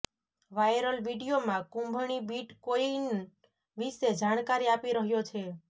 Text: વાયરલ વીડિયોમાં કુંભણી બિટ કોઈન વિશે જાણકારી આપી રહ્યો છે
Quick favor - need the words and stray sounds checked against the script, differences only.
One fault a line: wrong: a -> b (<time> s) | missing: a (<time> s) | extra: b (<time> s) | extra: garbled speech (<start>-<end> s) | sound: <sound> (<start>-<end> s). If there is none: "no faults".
no faults